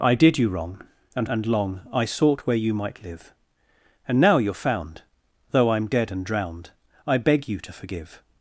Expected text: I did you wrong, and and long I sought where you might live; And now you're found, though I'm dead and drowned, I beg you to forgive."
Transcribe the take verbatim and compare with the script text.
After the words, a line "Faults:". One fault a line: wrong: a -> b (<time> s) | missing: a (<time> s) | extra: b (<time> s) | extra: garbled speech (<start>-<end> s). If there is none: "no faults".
I did you wrong, and and long I sought where you might live; And now you're found, though I'm dead and drowned, I beg you to forgive."
Faults:
no faults